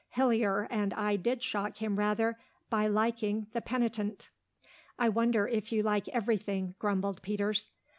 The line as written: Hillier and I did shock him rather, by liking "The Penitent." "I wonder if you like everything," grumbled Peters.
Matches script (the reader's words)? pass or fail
pass